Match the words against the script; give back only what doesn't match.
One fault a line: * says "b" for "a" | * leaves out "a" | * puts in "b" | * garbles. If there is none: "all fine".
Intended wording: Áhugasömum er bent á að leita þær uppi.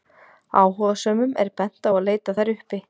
all fine